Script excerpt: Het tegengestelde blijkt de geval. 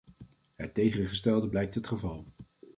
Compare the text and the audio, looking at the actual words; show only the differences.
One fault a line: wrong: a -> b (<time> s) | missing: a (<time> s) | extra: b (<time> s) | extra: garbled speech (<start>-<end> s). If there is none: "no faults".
wrong: de -> het (1.7 s)